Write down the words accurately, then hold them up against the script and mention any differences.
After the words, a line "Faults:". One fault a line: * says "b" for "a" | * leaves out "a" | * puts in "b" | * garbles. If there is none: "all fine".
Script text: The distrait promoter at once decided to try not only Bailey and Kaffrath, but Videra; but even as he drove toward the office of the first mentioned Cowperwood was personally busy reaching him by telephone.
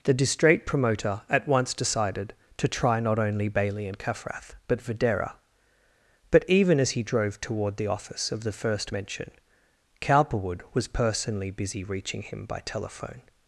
The distrait promoter at once decided to try not only Bailey and Kaffrath, but Videra; but even as he drove toward the office of the first mention Cowperwood was personally busy reaching him by telephone.
Faults:
* says "mention" for "mentioned"